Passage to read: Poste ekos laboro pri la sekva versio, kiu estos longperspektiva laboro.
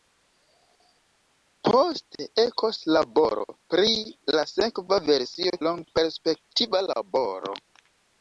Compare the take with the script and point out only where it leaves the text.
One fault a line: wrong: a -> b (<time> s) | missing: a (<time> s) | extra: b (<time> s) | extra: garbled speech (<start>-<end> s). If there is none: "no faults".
missing: kiu estos (5.5 s)